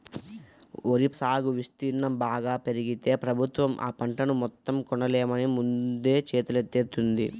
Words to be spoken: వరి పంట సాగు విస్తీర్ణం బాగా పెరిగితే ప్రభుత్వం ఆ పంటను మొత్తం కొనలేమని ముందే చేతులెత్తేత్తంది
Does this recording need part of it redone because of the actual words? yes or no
yes